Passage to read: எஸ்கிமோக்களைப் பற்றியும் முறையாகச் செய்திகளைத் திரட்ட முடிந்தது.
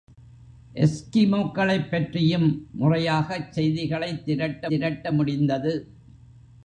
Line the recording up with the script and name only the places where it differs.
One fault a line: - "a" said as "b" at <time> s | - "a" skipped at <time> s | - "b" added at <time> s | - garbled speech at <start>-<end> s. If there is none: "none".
- "திரட்ட" added at 4.7 s